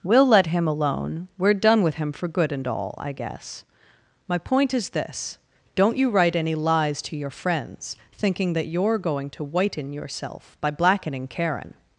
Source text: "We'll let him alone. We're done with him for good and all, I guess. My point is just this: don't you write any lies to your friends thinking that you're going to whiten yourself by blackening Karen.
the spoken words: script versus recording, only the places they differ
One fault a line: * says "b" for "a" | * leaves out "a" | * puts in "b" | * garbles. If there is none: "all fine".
* leaves out "just"